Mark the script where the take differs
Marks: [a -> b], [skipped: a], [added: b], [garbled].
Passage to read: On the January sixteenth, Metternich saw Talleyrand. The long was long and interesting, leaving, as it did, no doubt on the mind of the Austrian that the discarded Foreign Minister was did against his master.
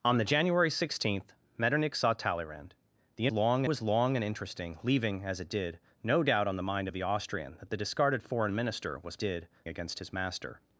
On the January sixteenth, Metternich saw Talleyrand. The long was long and interesting, leaving, as it did, no doubt on the mind of the Austrian that the discarded Foreign Minister was did against his master.